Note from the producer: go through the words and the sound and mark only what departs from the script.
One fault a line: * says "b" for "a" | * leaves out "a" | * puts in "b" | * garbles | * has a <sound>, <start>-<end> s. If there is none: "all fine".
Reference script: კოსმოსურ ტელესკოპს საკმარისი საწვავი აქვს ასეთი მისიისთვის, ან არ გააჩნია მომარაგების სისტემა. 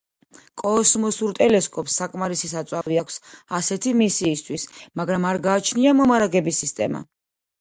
* has a dropout, 2.8-2.9 s
* says "მაგრამ" for "ან"